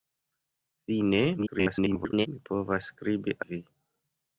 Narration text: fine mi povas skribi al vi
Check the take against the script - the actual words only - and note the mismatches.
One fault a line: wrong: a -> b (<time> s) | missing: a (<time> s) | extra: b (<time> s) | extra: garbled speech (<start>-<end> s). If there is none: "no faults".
extra: garbled speech (1.4-2.3 s)
missing: al (3.4 s)